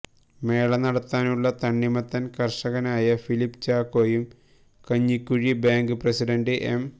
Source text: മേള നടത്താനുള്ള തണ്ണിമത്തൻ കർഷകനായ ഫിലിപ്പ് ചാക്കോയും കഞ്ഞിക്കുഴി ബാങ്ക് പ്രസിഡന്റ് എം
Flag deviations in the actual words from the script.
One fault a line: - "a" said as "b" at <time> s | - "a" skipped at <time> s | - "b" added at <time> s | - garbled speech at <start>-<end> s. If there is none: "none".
none